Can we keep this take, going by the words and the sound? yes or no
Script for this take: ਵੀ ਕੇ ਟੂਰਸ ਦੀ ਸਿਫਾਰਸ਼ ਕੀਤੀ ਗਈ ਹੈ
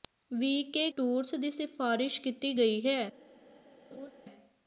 no